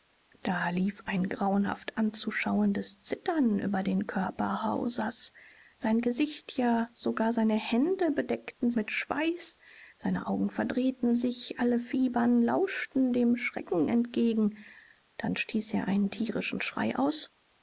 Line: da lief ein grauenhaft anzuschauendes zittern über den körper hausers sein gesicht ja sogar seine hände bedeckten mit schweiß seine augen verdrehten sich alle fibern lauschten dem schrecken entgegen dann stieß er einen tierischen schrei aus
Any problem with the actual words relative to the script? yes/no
no